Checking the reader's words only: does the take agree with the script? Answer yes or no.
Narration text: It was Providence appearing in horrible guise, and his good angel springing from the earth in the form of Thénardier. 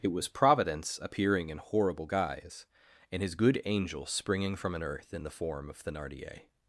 no